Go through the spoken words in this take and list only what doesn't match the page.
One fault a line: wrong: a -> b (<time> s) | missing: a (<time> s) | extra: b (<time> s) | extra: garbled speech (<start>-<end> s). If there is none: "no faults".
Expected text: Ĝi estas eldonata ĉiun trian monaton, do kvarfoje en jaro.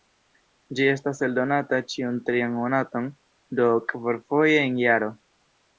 no faults